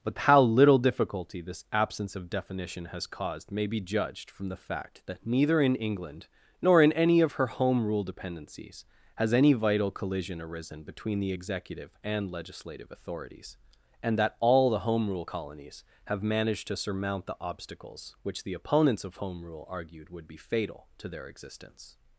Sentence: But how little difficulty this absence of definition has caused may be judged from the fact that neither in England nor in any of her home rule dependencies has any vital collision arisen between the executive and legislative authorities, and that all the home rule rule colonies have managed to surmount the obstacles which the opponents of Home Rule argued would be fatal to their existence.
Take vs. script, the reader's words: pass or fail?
fail